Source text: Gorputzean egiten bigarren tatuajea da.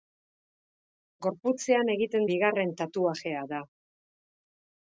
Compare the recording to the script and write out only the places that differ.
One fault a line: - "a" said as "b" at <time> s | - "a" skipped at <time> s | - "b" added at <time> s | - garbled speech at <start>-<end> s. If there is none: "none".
none